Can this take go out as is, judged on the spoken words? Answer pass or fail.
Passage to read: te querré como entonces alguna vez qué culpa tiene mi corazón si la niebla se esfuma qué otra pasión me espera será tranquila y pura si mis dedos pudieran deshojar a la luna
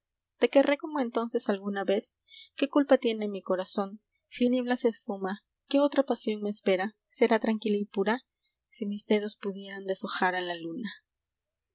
fail